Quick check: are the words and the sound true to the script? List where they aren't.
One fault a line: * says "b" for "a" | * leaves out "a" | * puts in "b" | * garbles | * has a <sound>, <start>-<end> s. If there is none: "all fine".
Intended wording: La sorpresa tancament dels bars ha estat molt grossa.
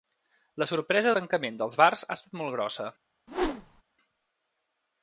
* has a whoosh, 3.3-3.8 s